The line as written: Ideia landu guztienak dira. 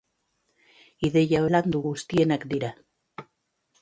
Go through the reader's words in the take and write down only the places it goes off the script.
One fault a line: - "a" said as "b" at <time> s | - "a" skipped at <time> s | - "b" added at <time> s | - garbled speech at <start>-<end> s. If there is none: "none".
none